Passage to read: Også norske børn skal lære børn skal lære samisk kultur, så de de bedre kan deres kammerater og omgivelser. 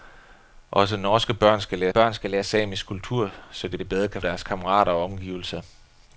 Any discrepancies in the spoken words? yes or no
no